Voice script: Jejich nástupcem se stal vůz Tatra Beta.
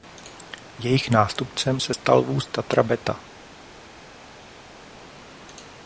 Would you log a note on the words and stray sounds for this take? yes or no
no